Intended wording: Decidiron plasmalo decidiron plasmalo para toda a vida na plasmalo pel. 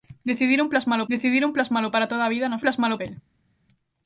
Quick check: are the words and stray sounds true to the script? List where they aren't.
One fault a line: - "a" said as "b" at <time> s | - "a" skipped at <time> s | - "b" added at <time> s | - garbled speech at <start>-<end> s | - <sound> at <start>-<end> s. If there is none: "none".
none